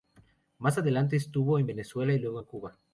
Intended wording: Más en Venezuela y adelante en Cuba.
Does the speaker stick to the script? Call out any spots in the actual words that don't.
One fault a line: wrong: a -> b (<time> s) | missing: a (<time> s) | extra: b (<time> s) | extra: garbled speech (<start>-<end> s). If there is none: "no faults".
extra: adelante estuvo (0.8 s)
wrong: adelante -> luego (2.2 s)